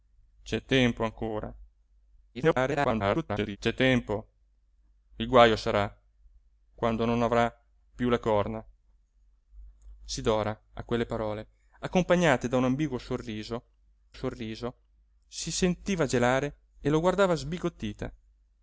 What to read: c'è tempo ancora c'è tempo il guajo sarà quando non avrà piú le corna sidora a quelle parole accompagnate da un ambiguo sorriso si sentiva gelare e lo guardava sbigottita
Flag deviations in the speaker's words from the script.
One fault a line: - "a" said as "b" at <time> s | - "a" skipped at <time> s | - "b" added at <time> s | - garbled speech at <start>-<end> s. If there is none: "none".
- garbled speech at 2.3-3.6 s
- "sorriso" added at 14.1 s